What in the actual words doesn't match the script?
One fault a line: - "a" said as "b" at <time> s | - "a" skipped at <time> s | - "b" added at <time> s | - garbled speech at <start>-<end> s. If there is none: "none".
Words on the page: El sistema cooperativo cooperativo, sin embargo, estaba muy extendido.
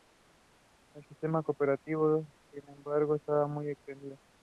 - "cooperativo" skipped at 2.2 s